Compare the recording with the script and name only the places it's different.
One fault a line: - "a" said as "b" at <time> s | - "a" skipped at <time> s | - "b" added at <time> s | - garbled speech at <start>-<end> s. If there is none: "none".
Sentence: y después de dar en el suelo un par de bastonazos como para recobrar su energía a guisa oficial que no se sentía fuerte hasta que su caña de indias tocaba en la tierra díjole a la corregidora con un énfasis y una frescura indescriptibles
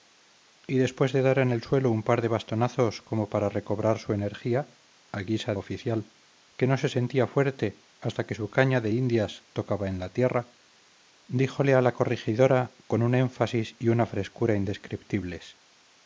none